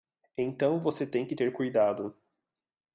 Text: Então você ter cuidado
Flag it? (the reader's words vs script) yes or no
yes